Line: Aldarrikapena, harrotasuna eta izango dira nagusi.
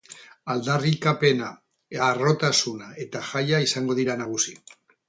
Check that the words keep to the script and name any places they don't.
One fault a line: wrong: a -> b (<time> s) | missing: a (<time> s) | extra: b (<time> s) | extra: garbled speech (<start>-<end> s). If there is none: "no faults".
extra: jaia (3.4 s)